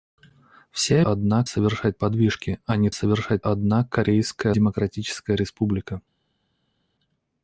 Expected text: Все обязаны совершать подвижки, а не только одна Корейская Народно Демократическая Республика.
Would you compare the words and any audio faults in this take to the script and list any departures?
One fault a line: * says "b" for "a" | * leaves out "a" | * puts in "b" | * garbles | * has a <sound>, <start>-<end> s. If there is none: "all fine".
* says "одна" for "обязаны"
* says "совершать" for "только"
* leaves out "Народно"